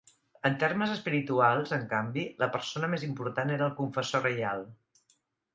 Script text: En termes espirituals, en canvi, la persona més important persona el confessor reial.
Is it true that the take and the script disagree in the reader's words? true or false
true